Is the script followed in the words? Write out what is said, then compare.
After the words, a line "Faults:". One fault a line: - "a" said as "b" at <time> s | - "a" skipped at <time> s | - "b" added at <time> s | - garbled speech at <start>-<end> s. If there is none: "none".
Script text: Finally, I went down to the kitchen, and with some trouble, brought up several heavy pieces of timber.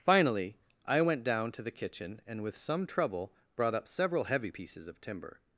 Finally, I went down to the kitchen, and with some trouble, brought up several heavy pieces of timber.
Faults:
none